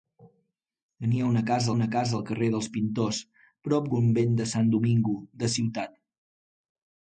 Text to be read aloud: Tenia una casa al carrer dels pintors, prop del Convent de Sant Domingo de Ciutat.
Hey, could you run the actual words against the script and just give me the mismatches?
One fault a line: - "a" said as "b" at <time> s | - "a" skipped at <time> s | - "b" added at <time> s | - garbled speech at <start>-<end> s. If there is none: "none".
- "una casa" added at 1.8 s
- "del" skipped at 3.9 s